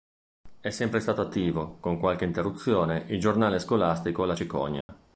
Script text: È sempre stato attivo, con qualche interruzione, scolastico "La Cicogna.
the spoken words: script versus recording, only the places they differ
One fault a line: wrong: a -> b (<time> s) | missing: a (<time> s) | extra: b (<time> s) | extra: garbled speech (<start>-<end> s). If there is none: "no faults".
extra: il giornale (3.1 s)